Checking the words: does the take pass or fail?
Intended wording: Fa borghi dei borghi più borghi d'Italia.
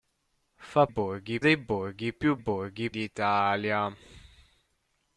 pass